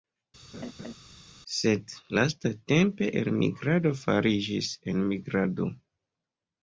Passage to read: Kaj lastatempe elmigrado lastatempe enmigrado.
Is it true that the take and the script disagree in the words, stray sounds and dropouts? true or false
true